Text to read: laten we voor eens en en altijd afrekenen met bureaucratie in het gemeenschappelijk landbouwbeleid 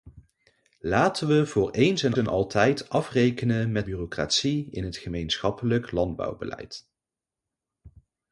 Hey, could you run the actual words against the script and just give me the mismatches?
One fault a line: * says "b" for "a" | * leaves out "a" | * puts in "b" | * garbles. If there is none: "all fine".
all fine